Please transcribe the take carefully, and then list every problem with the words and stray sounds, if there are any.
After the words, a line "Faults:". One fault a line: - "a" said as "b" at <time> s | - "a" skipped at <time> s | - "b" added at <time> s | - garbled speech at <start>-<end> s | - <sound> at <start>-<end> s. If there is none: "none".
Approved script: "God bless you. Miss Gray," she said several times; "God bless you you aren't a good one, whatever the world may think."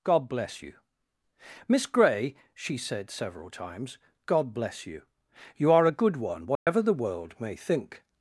"God bless you. Miss Gray," she said several times; "God bless you you are a good one, whatever the world may think."
Faults:
- "aren't" said as "are" at 5.7 s
- dropout at 6.5-6.7 s